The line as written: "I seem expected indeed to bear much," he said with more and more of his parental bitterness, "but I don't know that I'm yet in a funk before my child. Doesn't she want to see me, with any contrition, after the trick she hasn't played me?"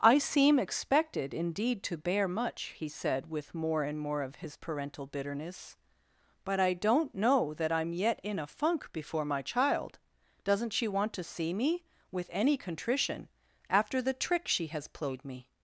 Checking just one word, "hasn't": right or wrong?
wrong